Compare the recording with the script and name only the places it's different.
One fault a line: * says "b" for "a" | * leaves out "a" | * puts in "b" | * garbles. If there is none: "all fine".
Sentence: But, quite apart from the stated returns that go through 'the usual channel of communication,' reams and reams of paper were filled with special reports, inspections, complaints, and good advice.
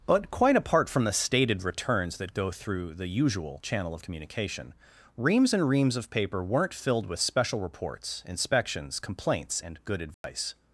* says "weren't" for "were"